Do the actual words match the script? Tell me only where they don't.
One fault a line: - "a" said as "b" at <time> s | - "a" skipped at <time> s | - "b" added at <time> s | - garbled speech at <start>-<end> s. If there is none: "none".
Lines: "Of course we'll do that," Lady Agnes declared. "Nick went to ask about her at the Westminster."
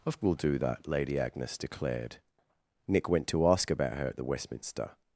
- "course" skipped at 0.2 s